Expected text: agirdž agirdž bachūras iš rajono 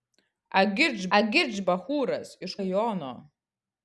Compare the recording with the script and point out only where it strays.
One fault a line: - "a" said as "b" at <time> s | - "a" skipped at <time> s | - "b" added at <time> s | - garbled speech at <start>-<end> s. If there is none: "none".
none